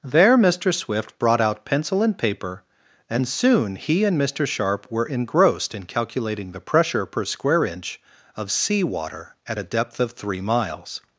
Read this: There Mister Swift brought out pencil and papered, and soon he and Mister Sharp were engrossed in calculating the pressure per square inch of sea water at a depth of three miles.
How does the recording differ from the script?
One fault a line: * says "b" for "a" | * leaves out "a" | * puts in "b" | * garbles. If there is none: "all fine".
* says "paper" for "papered"